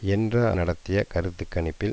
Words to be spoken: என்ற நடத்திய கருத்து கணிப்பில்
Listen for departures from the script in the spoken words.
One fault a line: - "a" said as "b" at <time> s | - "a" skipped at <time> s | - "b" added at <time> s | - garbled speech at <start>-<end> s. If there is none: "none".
none